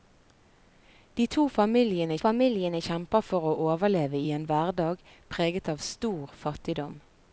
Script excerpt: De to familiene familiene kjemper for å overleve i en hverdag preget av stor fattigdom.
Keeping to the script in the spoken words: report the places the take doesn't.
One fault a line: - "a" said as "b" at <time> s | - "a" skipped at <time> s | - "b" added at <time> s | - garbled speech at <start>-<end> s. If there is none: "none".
none